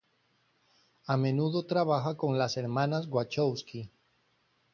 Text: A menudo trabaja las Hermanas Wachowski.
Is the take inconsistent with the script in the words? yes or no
yes